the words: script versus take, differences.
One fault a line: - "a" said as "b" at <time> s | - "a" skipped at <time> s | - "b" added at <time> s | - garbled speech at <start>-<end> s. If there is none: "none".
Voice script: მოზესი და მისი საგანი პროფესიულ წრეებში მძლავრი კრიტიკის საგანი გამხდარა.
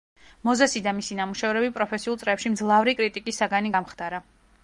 - "საგანი" said as "ნამუშევრები" at 1.2 s